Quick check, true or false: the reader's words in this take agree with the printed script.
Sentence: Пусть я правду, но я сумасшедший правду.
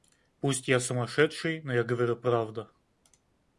false